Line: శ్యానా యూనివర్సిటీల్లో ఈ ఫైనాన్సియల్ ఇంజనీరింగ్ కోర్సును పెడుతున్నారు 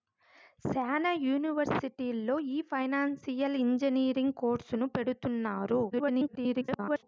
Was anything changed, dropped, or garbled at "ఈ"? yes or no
no